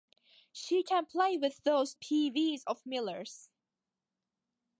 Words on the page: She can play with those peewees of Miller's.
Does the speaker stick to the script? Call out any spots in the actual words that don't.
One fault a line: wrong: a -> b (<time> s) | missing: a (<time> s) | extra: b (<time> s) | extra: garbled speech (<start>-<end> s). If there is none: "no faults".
no faults